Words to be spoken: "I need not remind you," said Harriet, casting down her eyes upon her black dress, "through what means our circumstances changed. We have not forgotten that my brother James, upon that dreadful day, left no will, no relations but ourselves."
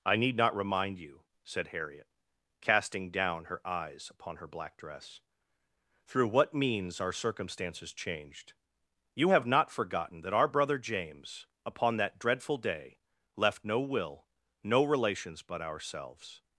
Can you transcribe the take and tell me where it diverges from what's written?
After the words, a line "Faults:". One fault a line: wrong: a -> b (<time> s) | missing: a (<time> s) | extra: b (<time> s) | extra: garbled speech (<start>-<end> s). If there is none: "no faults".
"I need not remind you," said Harriet, casting down her eyes upon her black dress, "through what means our circumstances changed. You have not forgotten that our brother James, upon that dreadful day, left no will, no relations but ourselves."
Faults:
wrong: We -> You (9.1 s)
wrong: my -> our (10.3 s)